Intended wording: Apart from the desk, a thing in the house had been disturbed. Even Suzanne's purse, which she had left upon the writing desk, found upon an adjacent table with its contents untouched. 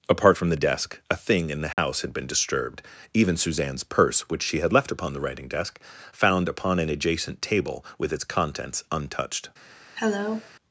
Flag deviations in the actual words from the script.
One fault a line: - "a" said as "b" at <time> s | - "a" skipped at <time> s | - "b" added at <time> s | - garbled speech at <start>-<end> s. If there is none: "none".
none